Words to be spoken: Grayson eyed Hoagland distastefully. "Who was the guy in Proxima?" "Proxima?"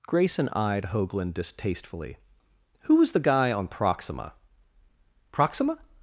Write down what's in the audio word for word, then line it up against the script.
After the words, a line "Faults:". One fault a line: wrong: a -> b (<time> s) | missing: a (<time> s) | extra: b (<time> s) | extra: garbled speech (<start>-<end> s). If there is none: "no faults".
Grayson eyed Hoagland distastefully. "Who was the guy on Proxima?" "Proxima?"
Faults:
wrong: in -> on (3.5 s)